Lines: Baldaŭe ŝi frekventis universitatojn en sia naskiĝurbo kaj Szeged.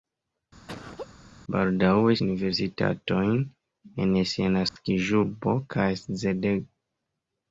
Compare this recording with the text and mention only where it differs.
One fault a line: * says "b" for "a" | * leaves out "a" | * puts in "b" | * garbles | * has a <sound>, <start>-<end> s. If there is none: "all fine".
* has a laugh, 0.7-1.1 s
* leaves out "ŝi frekventis"
* has a dropout, 4.7-4.8 s